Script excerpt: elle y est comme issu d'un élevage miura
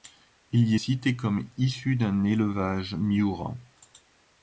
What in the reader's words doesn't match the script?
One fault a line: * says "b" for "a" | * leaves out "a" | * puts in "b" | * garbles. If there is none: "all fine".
* says "il" for "elle"
* puts in "cité"